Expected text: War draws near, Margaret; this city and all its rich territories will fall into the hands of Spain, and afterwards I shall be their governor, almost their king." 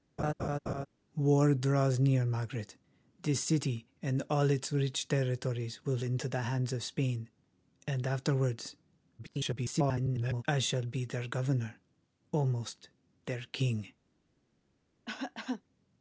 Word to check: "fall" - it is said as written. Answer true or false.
false